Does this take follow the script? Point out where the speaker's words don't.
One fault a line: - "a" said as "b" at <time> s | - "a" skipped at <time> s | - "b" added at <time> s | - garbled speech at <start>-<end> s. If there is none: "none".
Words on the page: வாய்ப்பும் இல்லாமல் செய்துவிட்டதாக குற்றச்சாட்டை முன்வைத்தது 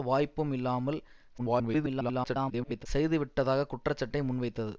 - garbled speech at 1.4-2.9 s